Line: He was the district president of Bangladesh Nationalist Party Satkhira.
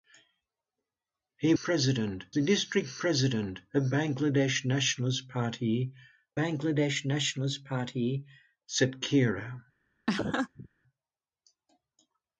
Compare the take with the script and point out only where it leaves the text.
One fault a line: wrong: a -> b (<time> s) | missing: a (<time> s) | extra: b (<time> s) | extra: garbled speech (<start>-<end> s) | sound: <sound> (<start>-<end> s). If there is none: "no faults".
wrong: was -> president (1.5 s)
extra: Bangladesh Nationalist Party (6.3 s)
sound: laugh (10.1-10.7 s)